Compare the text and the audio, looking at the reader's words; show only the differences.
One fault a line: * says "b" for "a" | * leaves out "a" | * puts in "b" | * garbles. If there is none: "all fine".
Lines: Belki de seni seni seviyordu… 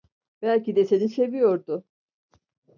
* leaves out "seni"